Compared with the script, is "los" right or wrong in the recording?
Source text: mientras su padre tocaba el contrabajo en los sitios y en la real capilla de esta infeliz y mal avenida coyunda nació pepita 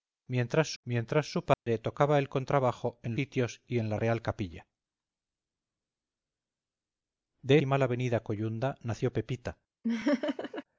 wrong